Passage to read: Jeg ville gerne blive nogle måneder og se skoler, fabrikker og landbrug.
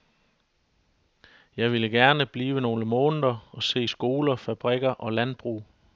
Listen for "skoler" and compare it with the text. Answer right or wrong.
right